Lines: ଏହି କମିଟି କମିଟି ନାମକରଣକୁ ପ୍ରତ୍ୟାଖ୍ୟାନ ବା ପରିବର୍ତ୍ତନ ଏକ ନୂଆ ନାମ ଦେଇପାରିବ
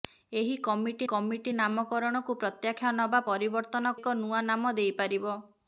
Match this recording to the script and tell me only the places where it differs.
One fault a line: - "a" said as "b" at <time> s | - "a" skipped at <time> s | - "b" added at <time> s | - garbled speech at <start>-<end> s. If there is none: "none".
none